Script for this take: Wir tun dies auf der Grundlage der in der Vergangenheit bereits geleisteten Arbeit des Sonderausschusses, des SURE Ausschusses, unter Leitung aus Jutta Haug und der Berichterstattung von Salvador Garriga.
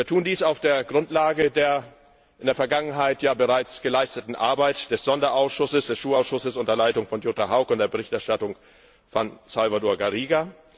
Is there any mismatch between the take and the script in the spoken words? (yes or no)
yes